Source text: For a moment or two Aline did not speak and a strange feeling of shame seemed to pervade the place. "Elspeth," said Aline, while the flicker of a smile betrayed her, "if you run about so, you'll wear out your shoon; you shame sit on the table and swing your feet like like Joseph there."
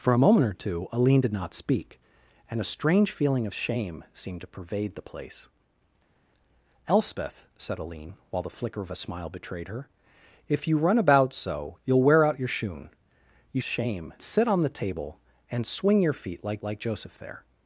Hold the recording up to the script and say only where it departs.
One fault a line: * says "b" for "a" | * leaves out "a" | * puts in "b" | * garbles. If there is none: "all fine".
all fine